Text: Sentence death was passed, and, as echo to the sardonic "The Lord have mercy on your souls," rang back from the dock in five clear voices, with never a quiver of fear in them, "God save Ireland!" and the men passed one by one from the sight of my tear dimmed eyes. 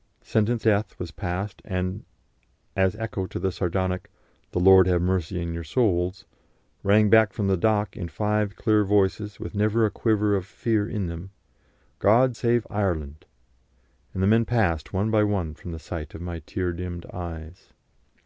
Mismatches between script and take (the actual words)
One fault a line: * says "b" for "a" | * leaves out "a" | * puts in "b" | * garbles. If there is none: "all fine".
all fine